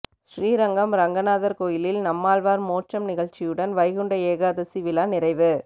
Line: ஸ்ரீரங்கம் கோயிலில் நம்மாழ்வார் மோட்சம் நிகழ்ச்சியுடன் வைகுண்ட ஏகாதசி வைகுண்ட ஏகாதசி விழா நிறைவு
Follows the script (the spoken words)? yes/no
no